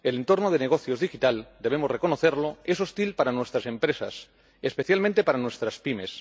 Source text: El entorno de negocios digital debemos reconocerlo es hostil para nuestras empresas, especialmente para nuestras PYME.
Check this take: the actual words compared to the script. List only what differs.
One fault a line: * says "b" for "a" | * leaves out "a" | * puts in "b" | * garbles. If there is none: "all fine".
all fine